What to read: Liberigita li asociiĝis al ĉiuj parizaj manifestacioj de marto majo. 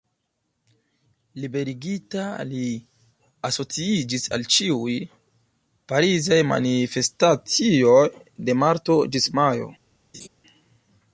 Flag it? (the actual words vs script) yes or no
yes